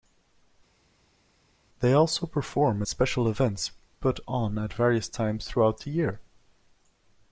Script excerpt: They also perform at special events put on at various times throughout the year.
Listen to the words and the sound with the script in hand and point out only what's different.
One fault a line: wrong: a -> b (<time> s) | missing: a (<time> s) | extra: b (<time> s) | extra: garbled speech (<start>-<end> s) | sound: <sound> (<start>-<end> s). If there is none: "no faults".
no faults